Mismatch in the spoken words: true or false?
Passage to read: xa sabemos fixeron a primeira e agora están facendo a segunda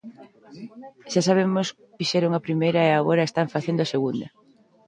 false